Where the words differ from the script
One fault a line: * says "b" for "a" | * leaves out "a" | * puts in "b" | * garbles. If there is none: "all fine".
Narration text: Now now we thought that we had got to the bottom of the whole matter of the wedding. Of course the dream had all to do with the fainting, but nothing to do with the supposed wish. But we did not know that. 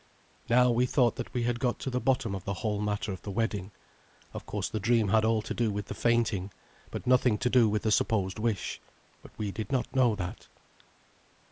* leaves out "now"